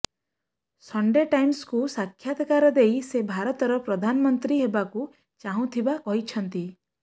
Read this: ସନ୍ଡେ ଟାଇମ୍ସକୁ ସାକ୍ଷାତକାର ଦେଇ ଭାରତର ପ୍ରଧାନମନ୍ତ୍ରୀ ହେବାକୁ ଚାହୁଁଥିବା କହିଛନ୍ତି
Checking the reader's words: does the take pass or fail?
fail